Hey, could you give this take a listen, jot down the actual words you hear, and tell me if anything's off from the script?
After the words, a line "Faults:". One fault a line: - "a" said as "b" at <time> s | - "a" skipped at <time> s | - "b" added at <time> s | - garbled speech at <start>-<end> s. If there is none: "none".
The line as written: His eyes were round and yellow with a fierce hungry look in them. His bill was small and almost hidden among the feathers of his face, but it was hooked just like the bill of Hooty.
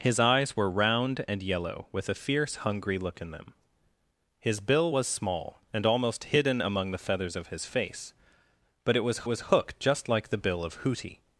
His eyes were round and yellow with a fierce hungry look in them. His bill was small and almost hidden among the feathers of his face, but it was was hooked just like the bill of Hooty.
Faults:
- "was" added at 9.3 s